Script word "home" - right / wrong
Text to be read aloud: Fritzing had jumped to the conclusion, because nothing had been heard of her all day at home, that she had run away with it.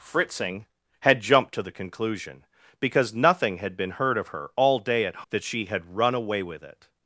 wrong